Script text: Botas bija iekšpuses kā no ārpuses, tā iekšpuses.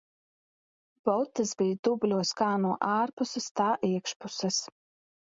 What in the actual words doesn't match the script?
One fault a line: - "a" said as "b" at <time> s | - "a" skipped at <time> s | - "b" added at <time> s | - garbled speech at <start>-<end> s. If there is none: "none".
- "iekšpuses" said as "dubļos" at 1.9 s